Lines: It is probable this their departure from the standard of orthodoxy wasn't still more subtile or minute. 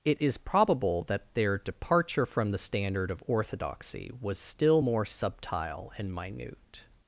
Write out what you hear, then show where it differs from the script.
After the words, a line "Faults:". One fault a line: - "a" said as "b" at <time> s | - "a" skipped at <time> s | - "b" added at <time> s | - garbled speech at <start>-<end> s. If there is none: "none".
It is probable that their departure from the standard of orthodoxy was still more subtile and minute.
Faults:
- "this" said as "that" at 1.0 s
- "wasn't" said as "was" at 4.2 s
- "or" said as "and" at 6.0 s